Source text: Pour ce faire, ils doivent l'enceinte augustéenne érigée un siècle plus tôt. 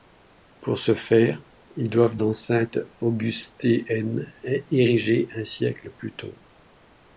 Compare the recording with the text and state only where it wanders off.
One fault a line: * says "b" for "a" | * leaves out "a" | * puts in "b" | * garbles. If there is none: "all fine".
all fine